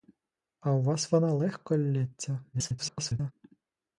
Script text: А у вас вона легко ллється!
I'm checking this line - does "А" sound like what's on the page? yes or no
yes